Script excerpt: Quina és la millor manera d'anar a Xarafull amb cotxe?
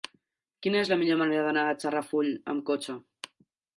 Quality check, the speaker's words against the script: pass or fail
pass